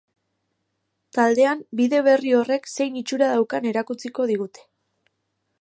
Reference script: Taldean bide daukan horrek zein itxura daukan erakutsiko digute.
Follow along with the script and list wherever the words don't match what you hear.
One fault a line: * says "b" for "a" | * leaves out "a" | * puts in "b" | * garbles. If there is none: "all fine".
* says "berri" for "daukan"